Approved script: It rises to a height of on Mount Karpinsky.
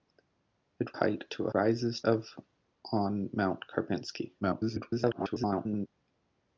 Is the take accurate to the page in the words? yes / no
no